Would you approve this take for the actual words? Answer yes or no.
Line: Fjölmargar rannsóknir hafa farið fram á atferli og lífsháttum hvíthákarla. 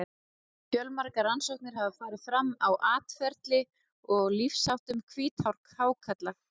yes